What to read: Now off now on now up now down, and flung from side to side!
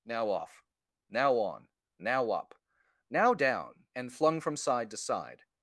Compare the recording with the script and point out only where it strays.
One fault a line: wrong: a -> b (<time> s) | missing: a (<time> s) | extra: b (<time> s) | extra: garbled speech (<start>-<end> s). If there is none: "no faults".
no faults